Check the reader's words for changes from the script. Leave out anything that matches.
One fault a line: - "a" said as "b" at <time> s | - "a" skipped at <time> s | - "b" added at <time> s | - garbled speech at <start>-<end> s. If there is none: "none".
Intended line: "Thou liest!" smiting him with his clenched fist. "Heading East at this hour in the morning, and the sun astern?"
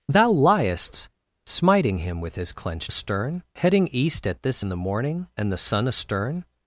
- "fist" said as "astern" at 2.9 s
- "hour" skipped at 4.6 s